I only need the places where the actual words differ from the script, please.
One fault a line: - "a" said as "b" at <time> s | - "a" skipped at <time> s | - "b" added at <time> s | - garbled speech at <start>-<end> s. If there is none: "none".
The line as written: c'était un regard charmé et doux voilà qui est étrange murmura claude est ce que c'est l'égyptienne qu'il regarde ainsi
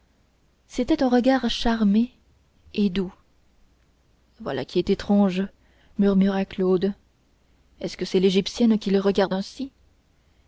none